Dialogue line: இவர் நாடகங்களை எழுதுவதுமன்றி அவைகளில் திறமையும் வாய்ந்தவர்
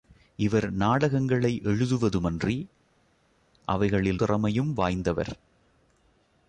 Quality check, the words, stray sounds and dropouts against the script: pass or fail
pass